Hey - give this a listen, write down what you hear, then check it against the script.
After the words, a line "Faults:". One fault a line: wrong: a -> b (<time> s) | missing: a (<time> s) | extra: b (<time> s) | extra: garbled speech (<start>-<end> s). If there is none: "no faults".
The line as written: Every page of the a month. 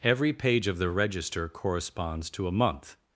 Every page of the register corresponds to a month.
Faults:
extra: register corresponds to (0.9 s)